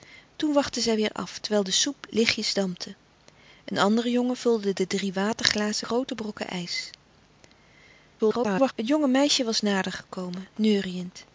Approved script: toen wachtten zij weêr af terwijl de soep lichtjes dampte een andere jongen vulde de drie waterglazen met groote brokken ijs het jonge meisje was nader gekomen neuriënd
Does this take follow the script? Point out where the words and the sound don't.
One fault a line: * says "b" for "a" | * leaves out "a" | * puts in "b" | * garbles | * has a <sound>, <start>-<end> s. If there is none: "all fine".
* leaves out "met"
* garbles